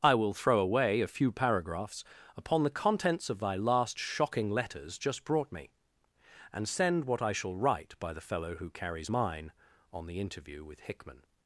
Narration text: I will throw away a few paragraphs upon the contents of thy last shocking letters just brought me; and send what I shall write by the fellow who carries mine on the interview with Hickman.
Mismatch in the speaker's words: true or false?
false